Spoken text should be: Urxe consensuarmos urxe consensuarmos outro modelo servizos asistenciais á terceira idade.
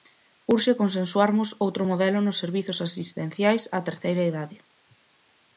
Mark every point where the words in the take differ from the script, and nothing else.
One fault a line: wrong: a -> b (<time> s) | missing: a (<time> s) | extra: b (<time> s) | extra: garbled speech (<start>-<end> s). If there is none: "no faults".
missing: urxe consensuarmos (1.5 s)
extra: nos (2.2 s)